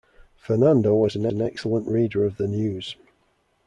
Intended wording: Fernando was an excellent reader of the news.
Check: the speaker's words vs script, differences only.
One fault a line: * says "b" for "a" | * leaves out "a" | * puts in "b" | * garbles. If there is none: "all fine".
* puts in "an"